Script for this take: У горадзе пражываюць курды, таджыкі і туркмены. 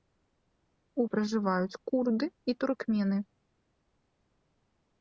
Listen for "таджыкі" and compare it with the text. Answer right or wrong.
wrong